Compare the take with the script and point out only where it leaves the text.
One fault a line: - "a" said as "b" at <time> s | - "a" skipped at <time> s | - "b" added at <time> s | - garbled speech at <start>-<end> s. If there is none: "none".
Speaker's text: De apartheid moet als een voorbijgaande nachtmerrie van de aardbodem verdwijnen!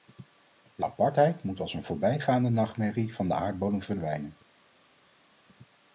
none